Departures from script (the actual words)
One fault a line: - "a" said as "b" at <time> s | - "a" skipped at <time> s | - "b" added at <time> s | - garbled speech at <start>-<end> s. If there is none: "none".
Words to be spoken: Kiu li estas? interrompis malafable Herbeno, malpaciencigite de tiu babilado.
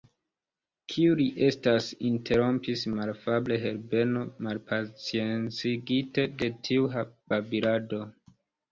none